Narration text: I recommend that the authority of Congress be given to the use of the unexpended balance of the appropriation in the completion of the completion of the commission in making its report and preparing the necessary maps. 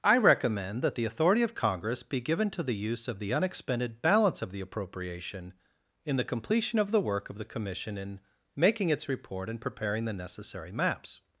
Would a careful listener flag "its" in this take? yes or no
no